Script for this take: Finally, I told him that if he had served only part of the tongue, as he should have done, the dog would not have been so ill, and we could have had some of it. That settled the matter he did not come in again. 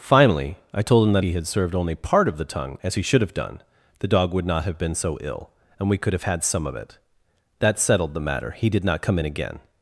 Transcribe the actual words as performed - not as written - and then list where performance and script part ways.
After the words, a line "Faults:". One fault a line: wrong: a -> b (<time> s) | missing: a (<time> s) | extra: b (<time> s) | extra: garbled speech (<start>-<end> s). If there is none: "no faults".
Finally, I told him that he had served only part of the tongue, as he should have done, the dog would not have been so ill, and we could have had some of it. That settled the matter he did not come in again.
Faults:
missing: if (1.2 s)